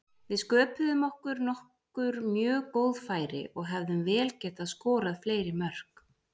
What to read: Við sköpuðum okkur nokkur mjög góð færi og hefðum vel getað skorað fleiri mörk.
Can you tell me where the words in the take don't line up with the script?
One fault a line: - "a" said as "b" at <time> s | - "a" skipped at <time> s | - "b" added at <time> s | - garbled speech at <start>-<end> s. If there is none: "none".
none